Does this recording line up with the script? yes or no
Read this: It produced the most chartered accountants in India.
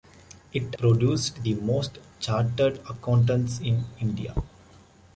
yes